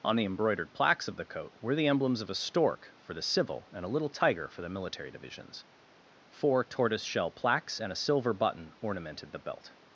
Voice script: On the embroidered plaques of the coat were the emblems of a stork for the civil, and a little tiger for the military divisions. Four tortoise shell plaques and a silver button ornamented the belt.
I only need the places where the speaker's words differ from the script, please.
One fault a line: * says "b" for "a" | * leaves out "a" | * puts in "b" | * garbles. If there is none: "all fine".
all fine